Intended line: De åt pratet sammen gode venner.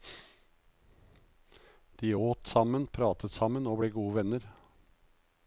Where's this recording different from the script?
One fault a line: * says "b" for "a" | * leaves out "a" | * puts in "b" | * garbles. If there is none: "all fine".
* puts in "sammen"
* puts in "og ble"